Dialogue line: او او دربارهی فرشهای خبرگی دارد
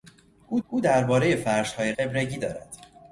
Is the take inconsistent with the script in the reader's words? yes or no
no